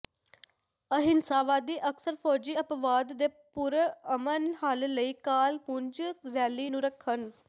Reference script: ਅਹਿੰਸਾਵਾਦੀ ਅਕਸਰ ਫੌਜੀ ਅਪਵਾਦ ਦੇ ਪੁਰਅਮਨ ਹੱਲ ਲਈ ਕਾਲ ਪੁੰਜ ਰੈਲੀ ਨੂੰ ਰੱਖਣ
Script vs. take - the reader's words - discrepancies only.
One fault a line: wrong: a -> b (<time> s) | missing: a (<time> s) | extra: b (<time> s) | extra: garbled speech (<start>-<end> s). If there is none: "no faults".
no faults